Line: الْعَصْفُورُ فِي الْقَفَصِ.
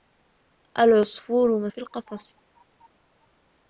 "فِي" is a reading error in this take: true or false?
false